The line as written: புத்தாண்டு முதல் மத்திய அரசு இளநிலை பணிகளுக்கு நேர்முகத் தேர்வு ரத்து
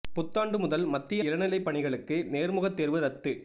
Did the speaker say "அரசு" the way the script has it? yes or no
no